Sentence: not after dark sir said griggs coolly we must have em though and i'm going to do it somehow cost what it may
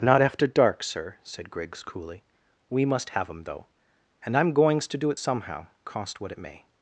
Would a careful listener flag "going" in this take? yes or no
yes